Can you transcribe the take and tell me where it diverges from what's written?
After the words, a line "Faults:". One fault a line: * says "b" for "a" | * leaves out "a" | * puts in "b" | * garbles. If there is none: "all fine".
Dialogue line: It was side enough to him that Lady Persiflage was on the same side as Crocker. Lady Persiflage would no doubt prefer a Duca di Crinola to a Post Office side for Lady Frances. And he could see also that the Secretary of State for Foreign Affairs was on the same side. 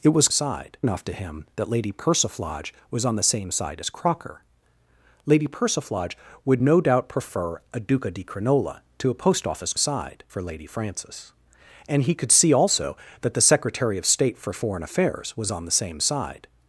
It was side enough to him that Lady Persiflage was on the same side as Crocker. Lady Persiflage would no doubt prefer a Duca di Crinola to a Post Office side for Lady Frances. And he could see also that the Secretary of State for Foreign Affairs was on the same side.
Faults:
all fine